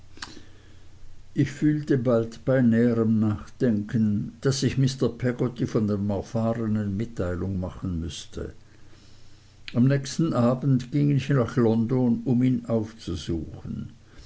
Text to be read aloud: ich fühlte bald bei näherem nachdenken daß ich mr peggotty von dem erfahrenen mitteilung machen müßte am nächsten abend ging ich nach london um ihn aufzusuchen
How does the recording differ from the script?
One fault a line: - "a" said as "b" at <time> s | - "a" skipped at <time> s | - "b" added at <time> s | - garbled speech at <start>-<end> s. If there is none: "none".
none